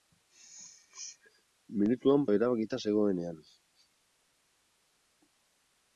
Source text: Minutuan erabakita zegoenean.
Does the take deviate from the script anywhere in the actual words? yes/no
no